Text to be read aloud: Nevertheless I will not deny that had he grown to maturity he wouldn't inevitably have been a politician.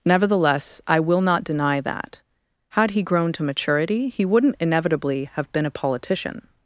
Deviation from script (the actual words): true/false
false